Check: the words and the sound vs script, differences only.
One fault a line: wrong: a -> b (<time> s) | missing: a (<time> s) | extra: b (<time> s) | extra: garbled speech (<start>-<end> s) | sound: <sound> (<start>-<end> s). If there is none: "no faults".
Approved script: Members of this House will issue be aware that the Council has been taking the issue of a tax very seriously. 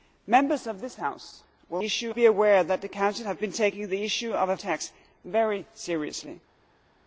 no faults